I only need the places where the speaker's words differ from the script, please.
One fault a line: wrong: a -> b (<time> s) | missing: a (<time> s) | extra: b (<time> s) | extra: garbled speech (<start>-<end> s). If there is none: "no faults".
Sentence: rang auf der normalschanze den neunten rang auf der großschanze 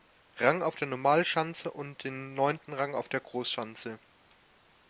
extra: und (1.7 s)